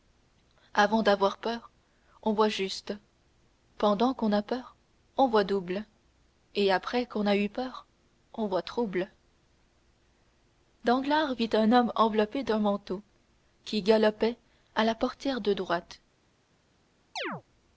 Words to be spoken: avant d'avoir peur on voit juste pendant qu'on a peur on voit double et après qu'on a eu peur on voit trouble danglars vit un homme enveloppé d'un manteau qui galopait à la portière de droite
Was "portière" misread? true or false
false